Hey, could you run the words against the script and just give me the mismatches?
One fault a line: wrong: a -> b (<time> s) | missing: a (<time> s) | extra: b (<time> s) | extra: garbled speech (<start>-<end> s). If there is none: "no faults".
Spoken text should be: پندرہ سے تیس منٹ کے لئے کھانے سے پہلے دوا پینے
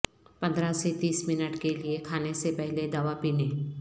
no faults